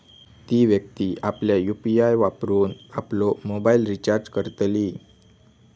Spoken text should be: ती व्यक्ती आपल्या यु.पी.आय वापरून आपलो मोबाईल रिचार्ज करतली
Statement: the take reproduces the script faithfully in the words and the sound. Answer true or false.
true